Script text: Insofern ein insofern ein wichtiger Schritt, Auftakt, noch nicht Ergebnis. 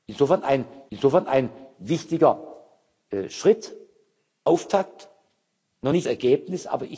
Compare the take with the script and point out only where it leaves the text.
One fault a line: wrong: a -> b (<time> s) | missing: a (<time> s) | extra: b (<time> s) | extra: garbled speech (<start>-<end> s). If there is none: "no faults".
no faults